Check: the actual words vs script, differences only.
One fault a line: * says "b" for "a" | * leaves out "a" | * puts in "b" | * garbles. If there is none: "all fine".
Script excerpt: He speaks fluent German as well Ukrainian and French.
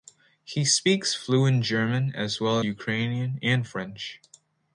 all fine